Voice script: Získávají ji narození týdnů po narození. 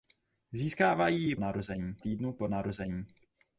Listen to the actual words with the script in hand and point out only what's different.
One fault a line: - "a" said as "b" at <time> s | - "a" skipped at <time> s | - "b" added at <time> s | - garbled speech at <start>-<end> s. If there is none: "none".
none